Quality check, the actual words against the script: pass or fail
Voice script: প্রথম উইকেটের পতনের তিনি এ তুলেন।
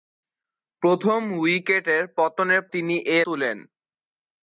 pass